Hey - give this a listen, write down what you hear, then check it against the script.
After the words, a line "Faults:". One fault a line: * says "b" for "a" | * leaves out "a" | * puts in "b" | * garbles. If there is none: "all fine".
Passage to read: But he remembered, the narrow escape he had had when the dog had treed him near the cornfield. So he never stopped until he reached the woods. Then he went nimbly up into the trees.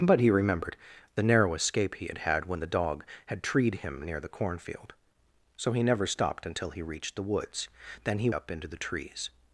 But he remembered, the narrow escape he had had when the dog had treed him near the cornfield. So he never stopped until he reached the woods. Then he up into the trees.
Faults:
* leaves out "went nimbly"